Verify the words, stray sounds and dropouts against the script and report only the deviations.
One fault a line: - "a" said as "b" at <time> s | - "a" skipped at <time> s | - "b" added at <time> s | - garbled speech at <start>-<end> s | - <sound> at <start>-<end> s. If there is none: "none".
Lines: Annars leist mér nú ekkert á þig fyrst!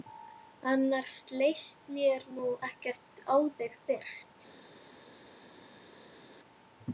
none